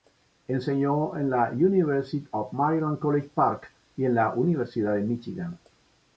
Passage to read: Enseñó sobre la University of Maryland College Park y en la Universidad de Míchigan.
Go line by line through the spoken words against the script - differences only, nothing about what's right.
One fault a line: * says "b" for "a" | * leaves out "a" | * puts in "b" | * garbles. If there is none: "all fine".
* says "en" for "sobre"